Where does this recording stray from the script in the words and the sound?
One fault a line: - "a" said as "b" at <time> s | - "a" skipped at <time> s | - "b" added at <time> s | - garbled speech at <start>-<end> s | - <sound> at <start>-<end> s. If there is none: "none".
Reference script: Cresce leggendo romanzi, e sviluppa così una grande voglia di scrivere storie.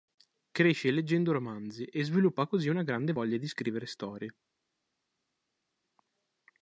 none